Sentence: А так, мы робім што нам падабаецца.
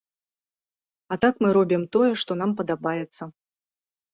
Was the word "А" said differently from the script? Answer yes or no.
no